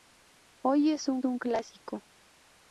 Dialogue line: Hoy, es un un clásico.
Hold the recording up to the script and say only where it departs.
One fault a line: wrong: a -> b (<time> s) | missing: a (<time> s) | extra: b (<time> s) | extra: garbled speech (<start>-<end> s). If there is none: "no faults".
no faults